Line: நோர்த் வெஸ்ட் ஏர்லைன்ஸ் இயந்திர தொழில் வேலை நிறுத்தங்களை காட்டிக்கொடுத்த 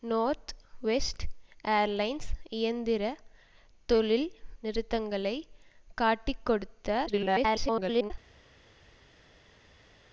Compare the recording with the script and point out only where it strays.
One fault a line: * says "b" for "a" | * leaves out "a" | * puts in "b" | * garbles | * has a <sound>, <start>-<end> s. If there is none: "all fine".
* leaves out "வேலை"
* garbles